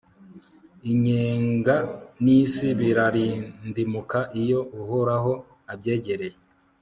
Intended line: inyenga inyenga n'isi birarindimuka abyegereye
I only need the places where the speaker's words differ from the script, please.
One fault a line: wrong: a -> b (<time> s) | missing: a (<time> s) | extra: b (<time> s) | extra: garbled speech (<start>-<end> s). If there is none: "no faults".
missing: inyenga (1.8 s)
extra: iyo uhoraho (4.4 s)